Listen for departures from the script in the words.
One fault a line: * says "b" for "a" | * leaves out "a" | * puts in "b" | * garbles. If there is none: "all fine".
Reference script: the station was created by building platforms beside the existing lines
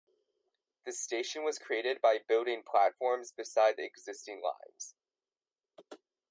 all fine